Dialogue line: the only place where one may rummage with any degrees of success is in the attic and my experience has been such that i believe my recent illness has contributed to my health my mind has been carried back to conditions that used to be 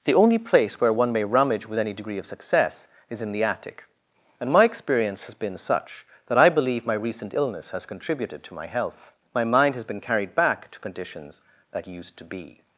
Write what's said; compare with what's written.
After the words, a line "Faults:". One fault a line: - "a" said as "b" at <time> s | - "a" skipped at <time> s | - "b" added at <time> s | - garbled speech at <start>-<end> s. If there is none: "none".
the only place where one may rummage with any degree of success is in the attic and my experience has been such that i believe my recent illness has contributed to my health my mind has been carried back to conditions that used to be
Faults:
- "degrees" said as "degree" at 1.9 s